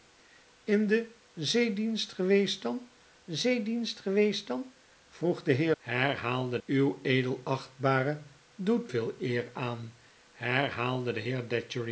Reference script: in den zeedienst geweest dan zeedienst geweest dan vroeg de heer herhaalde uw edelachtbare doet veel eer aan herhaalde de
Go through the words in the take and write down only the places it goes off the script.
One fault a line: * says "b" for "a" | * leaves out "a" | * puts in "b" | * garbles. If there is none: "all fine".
all fine